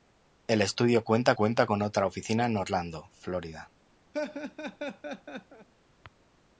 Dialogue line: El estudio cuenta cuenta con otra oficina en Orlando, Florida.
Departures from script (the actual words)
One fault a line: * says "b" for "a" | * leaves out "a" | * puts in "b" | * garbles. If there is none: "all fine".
all fine